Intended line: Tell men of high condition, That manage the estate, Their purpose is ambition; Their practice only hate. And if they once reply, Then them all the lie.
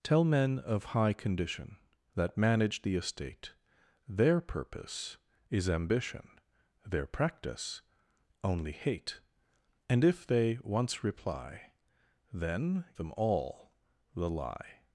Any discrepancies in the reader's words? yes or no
no